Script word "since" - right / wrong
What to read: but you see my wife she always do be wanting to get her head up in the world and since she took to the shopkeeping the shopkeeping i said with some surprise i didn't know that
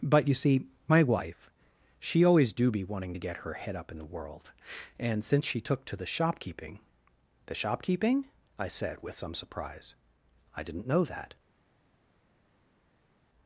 right